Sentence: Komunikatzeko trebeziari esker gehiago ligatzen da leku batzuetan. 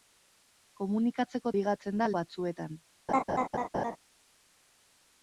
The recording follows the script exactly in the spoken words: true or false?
false